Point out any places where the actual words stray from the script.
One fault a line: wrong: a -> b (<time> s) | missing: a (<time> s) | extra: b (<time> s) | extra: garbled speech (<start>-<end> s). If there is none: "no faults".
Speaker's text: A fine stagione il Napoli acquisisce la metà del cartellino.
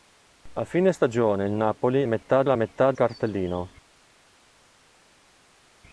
wrong: acquisisce -> metà (2.1 s)
missing: del (2.9 s)